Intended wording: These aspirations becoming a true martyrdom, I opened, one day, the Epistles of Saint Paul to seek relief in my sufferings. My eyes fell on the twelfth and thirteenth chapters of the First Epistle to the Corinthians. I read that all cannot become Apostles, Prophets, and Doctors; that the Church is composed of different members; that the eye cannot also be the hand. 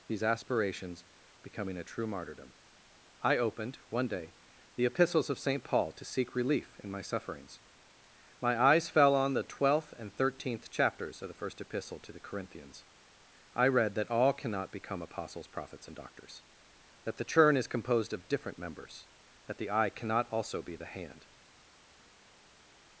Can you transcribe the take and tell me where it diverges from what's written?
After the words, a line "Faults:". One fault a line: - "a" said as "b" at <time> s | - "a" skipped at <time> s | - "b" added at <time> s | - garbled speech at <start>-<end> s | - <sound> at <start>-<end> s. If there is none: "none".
These aspirations becoming a true martyrdom, I opened, one day, the Epistles of Saint Paul to seek relief in my sufferings. My eyes fell on the twelfth and thirteenth chapters of the First Epistle to the Corinthians. I read that all cannot become Apostles, Prophets, and Doctors; that the Churn is composed of different members; that the eye cannot also be the hand.
Faults:
- "Church" said as "Churn" at 17.2 s